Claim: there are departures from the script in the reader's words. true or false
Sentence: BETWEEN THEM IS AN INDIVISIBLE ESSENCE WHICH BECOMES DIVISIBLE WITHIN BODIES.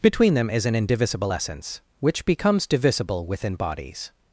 false